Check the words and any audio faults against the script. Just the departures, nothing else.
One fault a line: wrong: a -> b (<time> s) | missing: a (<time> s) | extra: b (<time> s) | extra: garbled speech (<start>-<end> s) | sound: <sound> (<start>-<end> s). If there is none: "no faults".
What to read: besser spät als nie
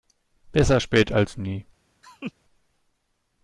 sound: laugh (2.0-2.3 s)